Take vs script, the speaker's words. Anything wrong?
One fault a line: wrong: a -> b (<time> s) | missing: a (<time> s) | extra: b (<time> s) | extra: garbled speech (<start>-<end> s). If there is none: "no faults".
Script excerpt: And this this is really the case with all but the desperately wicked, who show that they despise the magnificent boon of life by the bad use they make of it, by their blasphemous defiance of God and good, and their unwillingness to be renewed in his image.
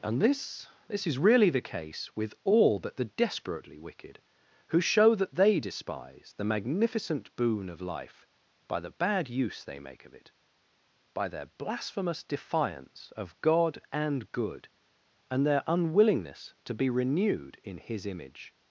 no faults